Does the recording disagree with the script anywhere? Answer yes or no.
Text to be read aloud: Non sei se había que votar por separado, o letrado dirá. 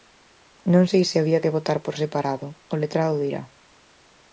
no